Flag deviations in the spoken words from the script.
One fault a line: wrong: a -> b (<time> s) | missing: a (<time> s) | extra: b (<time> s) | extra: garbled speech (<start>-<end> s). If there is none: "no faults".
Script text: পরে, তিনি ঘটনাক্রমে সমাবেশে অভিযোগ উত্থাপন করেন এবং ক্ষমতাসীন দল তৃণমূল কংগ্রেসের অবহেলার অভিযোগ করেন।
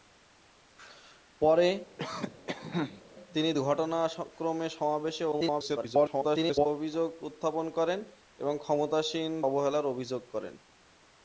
extra: garbled speech (5.3-6.7 s)
missing: দল তৃণমূল কংগ্রেসের (9.3 s)